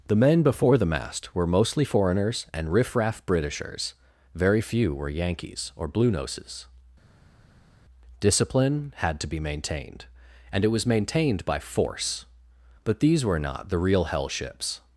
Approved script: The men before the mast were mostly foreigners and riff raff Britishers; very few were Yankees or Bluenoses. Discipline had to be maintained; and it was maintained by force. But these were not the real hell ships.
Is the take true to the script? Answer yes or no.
yes